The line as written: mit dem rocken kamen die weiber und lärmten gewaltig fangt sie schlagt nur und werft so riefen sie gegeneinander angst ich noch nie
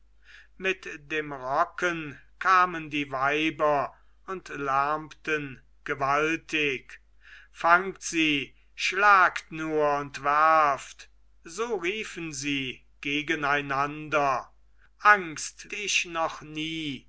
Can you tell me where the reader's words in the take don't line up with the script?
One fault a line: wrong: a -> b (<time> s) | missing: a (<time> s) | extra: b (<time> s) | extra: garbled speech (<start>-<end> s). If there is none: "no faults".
no faults